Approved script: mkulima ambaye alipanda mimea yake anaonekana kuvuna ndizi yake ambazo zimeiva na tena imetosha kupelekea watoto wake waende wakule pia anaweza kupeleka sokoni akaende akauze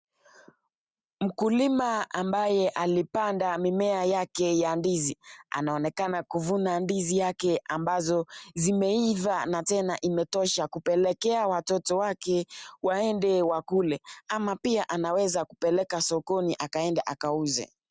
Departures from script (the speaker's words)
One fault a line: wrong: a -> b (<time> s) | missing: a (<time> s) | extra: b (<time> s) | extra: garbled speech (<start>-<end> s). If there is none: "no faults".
extra: ya ndizi (4.6 s)
extra: ama (14.3 s)